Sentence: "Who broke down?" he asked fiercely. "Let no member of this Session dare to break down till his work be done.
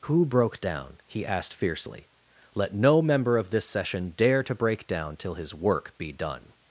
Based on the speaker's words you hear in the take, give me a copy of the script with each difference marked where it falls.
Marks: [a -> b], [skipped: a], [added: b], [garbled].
"Who broke down?" he asked fiercely. "Let no member of this Session dare to break down till his work be done.